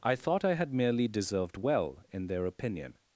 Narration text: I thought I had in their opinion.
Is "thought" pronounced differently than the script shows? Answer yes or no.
no